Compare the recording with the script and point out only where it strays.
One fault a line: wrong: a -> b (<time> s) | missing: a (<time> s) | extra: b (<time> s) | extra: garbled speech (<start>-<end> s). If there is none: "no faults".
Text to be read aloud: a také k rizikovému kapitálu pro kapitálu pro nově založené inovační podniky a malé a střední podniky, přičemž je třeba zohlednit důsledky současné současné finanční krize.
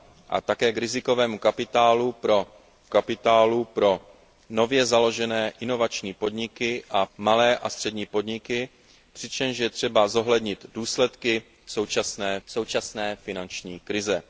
no faults